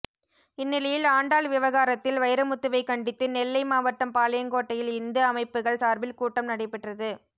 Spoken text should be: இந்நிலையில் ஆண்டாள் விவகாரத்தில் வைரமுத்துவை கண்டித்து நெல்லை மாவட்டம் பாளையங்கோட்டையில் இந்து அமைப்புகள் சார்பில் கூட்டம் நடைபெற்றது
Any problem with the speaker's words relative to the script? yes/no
no